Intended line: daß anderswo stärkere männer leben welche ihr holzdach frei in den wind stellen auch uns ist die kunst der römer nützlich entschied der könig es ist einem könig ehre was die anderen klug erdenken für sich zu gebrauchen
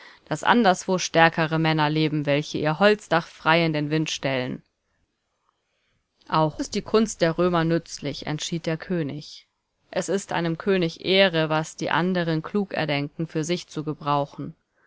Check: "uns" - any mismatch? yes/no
yes